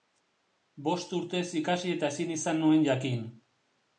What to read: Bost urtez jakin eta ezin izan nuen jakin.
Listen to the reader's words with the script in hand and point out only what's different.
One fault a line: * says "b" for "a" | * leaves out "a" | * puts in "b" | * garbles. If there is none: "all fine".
* says "ikasi" for "jakin"